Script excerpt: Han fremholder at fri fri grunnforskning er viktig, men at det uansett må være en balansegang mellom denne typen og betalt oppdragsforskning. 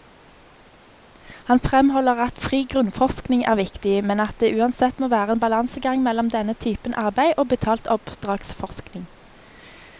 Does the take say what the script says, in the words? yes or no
no